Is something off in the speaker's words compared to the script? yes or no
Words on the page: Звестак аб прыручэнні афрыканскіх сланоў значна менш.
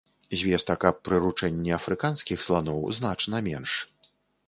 no